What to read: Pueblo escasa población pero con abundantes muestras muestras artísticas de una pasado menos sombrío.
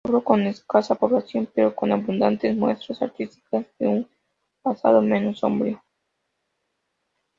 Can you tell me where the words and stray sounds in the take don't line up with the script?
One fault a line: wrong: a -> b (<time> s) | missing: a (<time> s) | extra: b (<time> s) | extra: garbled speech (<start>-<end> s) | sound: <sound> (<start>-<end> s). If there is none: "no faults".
extra: con (0.2 s)
missing: muestras (3.0 s)
wrong: una -> un (3.9 s)